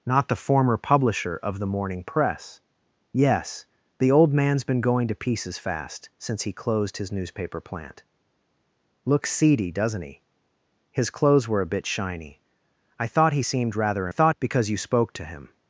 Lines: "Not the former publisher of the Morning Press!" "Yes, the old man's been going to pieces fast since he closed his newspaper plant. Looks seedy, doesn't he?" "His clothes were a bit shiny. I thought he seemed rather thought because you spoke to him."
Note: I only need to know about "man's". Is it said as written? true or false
true